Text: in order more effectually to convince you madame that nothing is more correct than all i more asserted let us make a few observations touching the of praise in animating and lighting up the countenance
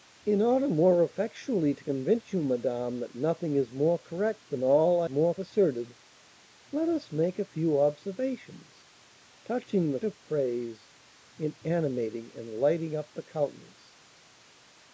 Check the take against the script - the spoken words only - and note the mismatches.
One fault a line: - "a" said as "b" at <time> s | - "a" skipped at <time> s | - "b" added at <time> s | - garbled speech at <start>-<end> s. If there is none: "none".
none